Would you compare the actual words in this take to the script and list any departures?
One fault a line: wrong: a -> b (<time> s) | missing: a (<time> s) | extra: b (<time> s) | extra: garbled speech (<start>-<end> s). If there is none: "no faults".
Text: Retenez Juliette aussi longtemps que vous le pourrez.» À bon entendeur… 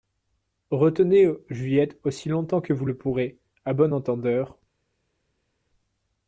no faults